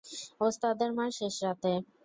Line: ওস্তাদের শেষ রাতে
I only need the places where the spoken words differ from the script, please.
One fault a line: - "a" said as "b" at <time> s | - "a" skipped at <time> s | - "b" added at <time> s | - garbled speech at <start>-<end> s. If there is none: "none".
- "মার" added at 1.0 s